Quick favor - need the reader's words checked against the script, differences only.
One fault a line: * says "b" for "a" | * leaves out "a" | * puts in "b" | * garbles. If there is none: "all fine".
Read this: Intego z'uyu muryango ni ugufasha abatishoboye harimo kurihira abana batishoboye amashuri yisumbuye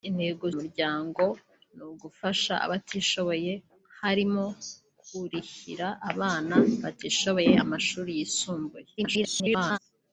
* leaves out "z'uyu"
* garbles